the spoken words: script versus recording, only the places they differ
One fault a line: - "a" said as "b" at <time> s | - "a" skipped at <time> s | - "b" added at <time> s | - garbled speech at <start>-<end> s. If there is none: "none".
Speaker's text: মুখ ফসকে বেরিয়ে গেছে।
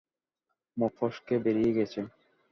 none